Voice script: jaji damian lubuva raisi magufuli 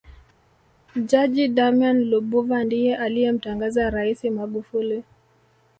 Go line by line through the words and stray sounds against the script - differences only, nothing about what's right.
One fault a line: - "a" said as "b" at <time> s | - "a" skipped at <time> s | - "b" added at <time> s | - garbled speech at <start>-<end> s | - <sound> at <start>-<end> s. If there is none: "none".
- "ndiye aliyemtangaza" added at 2.6 s